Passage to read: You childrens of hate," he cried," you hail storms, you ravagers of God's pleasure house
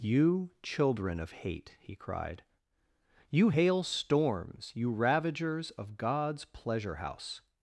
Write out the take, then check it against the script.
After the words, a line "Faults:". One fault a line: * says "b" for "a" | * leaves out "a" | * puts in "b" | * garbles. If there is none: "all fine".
You children of hate," he cried," you hail storms, you ravagers of God's pleasure house
Faults:
* says "children" for "childrens"